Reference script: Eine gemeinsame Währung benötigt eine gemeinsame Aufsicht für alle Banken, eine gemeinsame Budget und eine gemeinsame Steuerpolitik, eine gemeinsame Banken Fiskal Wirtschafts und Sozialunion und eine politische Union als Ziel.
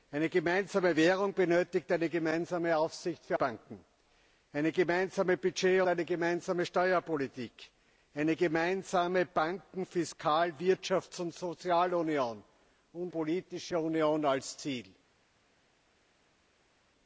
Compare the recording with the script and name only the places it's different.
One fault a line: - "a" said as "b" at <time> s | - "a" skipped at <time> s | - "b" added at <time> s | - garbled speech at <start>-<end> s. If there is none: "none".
- "alle" skipped at 3.4 s
- "und" skipped at 5.8 s
- "eine" skipped at 13.1 s